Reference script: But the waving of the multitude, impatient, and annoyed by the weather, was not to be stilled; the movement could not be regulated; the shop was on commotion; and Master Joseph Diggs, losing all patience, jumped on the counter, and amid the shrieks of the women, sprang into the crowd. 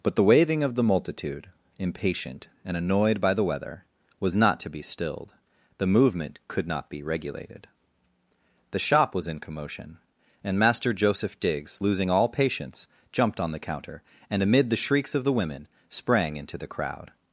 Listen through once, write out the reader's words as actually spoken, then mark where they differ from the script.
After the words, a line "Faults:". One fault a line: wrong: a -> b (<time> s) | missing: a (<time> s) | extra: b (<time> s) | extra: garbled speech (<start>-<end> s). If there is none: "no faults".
But the waving of the multitude, impatient, and annoyed by the weather, was not to be stilled; the movement could not be regulated; the shop was in commotion; and Master Joseph Diggs, losing all patience, jumped on the counter, and amid the shrieks of the women, sprang into the crowd.
Faults:
wrong: on -> in (9.3 s)